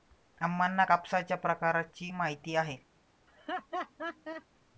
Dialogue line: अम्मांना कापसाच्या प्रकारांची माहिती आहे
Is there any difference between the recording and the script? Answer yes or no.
no